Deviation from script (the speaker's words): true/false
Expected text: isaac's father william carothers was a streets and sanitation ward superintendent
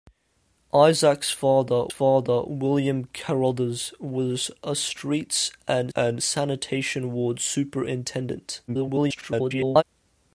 true